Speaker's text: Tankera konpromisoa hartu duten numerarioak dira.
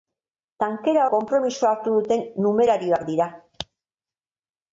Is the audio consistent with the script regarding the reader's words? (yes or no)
yes